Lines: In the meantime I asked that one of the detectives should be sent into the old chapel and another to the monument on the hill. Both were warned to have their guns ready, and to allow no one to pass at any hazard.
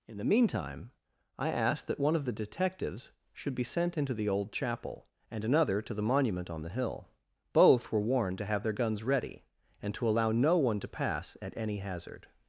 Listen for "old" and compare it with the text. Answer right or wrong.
right